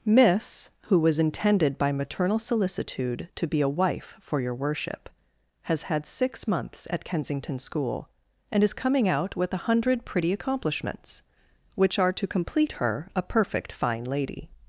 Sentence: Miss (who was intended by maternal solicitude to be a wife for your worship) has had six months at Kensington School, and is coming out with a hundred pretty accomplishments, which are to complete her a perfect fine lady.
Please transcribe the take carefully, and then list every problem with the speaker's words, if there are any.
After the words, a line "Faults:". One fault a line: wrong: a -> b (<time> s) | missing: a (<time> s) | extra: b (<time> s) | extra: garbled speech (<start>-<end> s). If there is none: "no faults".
Miss (who was intended by maternal solicitude to be a wife for your worship) has had six months at Kensington School, and is coming out with a hundred pretty accomplishments, which are to complete her a perfect fine lady.
Faults:
no faults